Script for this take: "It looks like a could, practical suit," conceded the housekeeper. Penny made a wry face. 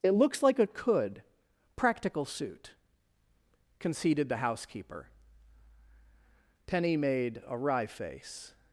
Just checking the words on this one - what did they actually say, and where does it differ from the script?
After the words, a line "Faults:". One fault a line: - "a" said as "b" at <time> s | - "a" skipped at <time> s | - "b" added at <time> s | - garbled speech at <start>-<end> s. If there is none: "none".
"It looks like a could, practical suit," conceded the housekeeper. Penny made a wry face.
Faults:
none